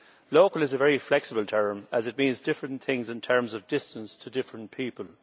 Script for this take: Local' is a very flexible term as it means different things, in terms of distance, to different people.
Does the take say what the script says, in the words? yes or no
yes